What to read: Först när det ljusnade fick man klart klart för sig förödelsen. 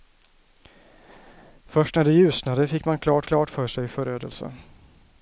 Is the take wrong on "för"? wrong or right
right